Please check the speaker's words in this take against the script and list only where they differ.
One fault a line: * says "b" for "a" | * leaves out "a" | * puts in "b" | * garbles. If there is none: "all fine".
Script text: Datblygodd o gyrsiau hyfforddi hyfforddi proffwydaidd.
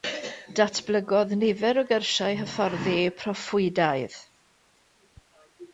* puts in "nifer"
* leaves out "hyfforddi"